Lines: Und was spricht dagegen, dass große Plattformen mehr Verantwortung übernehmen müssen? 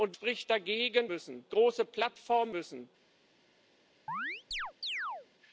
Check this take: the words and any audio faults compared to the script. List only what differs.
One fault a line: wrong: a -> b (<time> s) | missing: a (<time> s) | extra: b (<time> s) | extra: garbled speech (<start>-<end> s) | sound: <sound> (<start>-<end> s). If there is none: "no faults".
missing: was (0.1 s)
wrong: dass -> müssen (1.1 s)
missing: mehr Verantwortung übernehmen (2.5 s)
sound: chirp (4.1-5.3 s)